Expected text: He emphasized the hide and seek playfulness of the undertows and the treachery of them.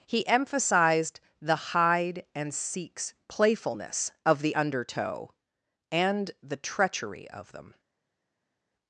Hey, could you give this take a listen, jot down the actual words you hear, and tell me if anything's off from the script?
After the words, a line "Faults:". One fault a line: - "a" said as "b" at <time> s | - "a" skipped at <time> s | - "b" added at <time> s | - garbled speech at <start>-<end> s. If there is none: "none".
He emphasized the hide and seeks playfulness of the undertow and the treachery of them.
Faults:
- "seek" said as "seeks" at 2.5 s
- "undertows" said as "undertow" at 4.5 s